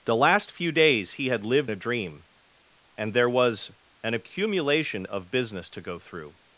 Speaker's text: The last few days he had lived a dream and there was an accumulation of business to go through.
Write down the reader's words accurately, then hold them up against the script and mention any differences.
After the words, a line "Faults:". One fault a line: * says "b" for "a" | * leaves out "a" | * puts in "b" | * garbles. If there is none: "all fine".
The last few days he had lived a dream and there was an accumulation of business to go through.
Faults:
all fine